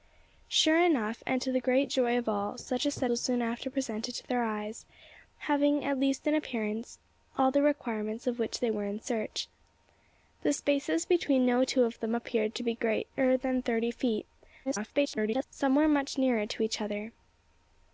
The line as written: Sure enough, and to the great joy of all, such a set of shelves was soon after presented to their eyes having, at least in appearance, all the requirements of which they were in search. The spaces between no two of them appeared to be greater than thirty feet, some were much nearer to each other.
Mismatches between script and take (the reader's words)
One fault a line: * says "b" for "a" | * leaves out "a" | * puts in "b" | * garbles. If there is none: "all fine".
* leaves out "of shelves"
* garbles